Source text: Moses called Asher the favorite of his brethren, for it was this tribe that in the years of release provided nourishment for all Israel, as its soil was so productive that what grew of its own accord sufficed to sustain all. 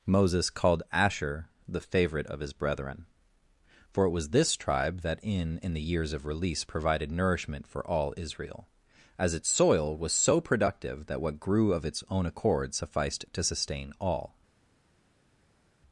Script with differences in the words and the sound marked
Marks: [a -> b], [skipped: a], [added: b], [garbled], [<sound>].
Moses called Asher the favorite of his brethren, for it was this tribe that in [added: in] the years of release provided nourishment for all Israel, as its soil was so productive that what grew of its own accord sufficed to sustain all.